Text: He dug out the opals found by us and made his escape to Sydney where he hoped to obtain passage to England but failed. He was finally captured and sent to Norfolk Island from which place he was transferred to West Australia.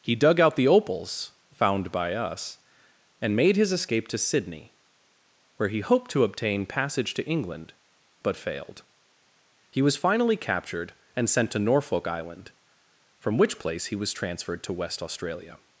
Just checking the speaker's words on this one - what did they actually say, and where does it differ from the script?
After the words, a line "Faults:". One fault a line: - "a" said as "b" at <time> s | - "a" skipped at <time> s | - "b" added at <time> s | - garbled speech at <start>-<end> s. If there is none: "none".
He dug out the opals found by us and made his escape to Sydney where he hoped to obtain passage to England but failed. He was finally captured and sent to Norfolk Island from which place he was transferred to West Australia.
Faults:
none